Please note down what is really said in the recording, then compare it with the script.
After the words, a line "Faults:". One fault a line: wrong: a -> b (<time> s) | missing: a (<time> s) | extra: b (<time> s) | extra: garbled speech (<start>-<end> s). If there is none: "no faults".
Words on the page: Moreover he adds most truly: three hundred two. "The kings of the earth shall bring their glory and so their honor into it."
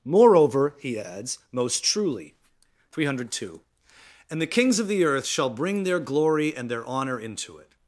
Moreover he adds most truly: three hundred two. "And the kings of the earth shall bring their glory and their honor into it."
Faults:
extra: And (4.3 s)
missing: so (6.7 s)